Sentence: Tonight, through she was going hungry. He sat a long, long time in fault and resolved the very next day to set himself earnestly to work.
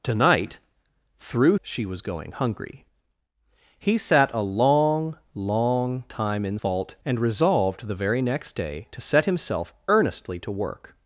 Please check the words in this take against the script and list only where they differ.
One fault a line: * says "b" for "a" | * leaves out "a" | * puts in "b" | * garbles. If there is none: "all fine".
all fine